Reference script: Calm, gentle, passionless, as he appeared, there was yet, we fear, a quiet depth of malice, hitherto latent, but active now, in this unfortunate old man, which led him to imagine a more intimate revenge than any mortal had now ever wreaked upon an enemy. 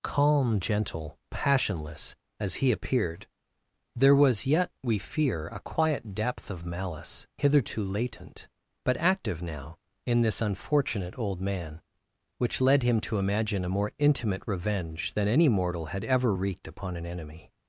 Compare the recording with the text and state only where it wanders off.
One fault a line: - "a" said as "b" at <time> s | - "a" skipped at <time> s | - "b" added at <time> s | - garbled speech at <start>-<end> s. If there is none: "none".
- "now" skipped at 16.0 s